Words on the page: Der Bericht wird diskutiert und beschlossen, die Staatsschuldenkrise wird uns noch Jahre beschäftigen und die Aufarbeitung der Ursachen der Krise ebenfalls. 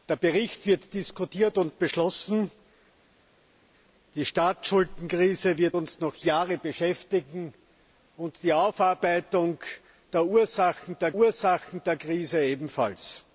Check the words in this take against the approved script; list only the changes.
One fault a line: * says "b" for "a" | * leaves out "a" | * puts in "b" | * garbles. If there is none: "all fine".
* puts in "Ursachen der"